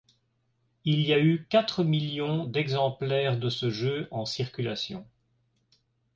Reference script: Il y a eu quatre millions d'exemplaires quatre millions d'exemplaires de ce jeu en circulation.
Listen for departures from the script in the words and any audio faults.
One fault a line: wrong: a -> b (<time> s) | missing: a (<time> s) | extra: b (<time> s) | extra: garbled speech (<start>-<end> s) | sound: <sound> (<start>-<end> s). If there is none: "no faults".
missing: quatre millions d'exemplaires (3.4 s)